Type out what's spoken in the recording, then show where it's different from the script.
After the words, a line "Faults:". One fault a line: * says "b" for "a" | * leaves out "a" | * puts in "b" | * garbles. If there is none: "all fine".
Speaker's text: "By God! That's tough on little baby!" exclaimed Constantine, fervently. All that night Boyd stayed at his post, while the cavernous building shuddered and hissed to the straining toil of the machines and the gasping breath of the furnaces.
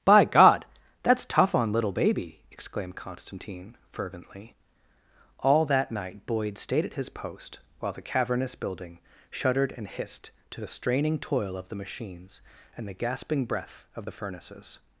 "By God! That's tough on little baby!" exclaimed Constantine, fervently. All that night Boyd stayed at his post, while the cavernous building shuddered and hissed to the straining toil of the machines and the gasping breath of the furnaces.
Faults:
all fine